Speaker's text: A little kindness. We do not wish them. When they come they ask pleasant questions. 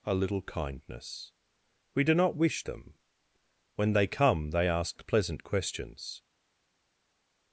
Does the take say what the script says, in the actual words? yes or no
yes